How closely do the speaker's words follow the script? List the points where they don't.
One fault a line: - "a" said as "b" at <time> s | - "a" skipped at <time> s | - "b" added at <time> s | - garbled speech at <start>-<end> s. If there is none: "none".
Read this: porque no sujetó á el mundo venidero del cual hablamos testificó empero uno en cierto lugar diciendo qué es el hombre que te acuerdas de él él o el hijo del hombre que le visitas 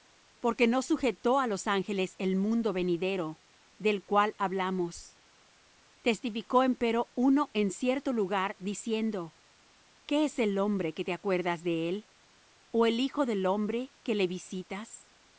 - "los ángeles" added at 1.5 s
- "él" skipped at 12.1 s